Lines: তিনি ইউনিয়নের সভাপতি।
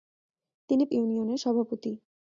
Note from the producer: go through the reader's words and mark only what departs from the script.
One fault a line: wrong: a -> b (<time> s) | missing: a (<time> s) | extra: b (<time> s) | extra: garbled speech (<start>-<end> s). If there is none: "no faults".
no faults